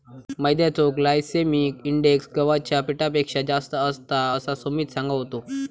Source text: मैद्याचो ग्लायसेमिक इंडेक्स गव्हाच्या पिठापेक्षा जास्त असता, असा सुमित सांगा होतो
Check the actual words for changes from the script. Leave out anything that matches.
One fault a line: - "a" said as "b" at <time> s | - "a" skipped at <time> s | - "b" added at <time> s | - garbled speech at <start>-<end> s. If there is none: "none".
none